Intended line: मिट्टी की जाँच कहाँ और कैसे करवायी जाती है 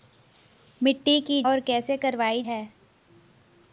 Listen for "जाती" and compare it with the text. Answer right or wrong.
wrong